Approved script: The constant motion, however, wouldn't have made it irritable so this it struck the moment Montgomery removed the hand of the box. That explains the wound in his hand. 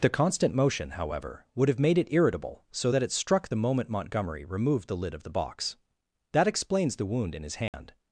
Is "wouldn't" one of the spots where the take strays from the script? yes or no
yes